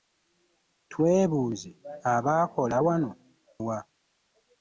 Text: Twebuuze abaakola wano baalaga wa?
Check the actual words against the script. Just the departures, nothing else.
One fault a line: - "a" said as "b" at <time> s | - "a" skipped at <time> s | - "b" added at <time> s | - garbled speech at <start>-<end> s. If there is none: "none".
- "baalaga" skipped at 3.1 s